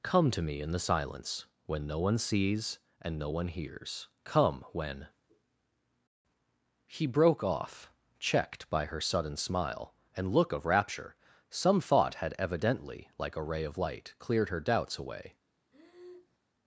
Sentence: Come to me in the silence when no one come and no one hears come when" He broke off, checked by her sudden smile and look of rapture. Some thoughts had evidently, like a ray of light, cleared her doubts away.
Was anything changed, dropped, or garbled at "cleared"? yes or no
no